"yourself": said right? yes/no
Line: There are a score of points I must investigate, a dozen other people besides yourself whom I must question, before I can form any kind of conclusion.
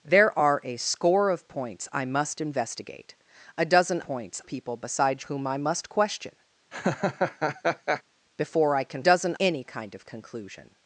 no